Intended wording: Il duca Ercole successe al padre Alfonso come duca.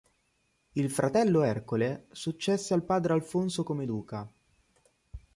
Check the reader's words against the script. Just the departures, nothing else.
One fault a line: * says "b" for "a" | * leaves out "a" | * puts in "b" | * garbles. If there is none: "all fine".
* says "fratello" for "duca"